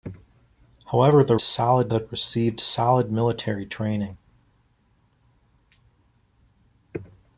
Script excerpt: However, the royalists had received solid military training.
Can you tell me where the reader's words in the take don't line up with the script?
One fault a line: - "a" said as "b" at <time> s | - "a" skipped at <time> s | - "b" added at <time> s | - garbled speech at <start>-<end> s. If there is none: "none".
- "royalists" said as "solid" at 1.4 s